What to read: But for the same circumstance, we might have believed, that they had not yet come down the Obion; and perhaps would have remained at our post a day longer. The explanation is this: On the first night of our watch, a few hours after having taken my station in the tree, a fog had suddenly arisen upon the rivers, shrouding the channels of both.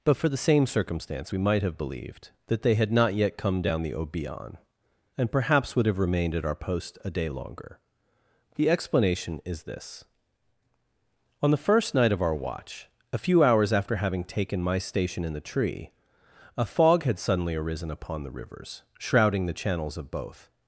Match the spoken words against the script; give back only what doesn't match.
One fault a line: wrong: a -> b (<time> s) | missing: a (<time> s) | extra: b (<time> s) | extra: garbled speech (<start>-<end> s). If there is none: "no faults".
no faults